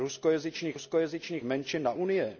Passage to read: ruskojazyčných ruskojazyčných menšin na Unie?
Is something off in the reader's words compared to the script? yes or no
no